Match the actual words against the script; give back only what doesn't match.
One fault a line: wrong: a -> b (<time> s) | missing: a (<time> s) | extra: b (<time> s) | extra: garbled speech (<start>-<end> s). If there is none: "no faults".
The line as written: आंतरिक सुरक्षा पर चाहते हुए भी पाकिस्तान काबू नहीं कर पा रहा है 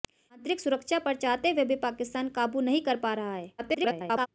extra: garbled speech (3.6-4.3 s)